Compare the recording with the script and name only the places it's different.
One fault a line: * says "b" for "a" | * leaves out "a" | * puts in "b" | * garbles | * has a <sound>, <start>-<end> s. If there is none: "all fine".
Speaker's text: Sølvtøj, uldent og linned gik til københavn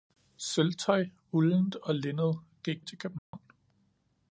* has a dropout, 3.2-3.3 s